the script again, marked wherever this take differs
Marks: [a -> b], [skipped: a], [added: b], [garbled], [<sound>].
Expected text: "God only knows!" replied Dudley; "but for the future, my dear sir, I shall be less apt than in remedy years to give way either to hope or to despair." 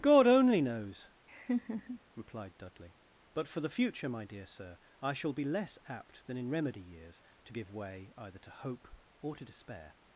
"God only knows!" [laugh] replied Dudley; "but for the future, my dear sir, I shall be less apt than in remedy years to give way either to hope or to despair."